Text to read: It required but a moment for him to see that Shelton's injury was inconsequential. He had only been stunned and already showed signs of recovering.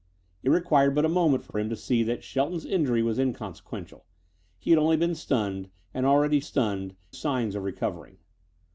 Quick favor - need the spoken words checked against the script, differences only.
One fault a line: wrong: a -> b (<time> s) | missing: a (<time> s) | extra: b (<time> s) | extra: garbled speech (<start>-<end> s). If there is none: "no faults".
extra: for (1.5 s)
wrong: showed -> stunned (6.4 s)